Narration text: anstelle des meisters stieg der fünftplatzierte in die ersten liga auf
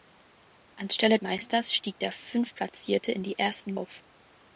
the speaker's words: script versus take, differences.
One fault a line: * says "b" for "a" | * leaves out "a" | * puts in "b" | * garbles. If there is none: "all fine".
* leaves out "des"
* leaves out "liga"